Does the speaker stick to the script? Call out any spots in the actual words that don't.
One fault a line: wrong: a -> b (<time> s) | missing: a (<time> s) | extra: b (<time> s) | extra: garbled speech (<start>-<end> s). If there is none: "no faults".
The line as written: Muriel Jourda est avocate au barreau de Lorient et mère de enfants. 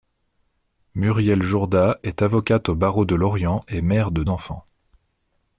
no faults